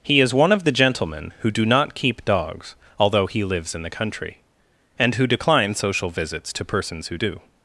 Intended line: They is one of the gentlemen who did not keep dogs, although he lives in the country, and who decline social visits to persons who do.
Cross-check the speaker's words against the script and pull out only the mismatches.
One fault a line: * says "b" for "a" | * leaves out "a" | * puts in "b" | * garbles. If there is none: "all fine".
* says "He" for "They"
* says "do" for "did"